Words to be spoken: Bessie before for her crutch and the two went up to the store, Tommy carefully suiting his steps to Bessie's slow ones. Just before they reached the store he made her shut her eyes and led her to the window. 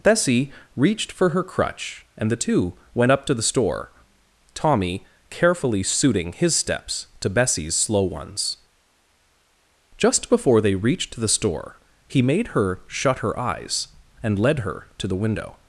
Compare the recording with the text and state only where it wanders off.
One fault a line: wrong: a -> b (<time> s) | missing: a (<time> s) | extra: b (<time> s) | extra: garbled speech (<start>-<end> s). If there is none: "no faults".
wrong: before -> reached (0.8 s)